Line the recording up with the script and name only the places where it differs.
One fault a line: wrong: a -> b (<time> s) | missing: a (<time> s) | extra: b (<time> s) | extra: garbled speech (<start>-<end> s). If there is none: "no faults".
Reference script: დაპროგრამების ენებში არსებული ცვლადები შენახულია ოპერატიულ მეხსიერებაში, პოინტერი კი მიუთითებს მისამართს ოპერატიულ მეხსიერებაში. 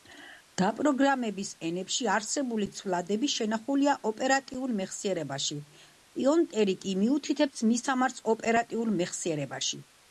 no faults